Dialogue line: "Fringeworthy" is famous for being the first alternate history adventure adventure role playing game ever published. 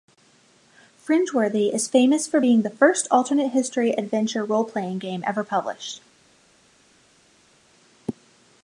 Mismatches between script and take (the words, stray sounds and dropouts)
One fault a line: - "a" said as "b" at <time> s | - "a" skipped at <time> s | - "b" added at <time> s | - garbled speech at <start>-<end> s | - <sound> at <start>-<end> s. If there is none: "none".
- "adventure" skipped at 4.4 s